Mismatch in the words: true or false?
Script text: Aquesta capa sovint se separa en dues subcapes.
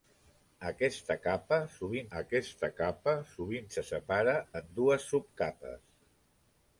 true